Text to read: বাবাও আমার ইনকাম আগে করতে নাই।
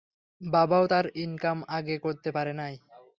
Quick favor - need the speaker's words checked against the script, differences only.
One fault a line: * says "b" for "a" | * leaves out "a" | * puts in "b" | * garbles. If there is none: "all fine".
* says "তার" for "আমার"
* puts in "পারে"